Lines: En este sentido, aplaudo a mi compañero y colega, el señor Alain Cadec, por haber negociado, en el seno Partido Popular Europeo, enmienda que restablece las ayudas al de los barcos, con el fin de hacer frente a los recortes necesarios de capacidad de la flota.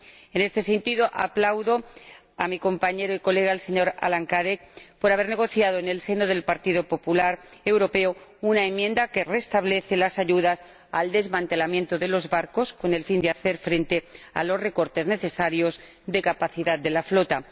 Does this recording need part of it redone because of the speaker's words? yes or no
yes